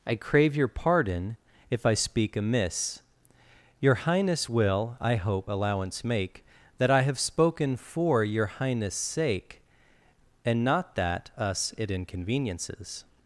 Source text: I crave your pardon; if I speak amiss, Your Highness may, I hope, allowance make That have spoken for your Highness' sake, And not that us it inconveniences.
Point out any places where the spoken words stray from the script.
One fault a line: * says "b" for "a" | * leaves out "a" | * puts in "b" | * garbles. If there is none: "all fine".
* says "will" for "may"
* puts in "I"